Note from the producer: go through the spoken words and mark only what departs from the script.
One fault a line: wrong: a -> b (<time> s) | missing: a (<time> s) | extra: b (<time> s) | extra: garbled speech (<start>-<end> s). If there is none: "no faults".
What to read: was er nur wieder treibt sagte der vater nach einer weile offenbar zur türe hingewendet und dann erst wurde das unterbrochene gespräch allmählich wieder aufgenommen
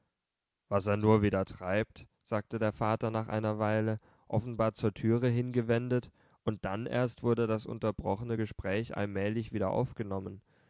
no faults